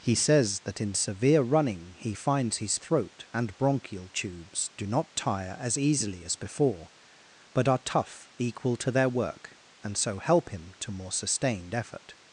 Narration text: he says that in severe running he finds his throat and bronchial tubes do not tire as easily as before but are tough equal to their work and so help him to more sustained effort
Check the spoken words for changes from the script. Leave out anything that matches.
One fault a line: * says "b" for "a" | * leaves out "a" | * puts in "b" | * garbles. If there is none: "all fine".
all fine